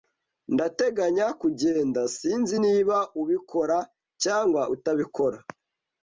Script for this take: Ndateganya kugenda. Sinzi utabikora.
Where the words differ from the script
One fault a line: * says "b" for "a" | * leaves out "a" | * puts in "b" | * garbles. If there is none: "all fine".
* puts in "niba ubikora cyangwa"